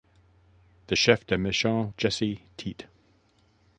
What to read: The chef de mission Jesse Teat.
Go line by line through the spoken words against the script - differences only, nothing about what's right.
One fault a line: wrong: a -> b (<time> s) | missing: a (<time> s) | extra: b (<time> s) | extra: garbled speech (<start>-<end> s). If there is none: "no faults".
no faults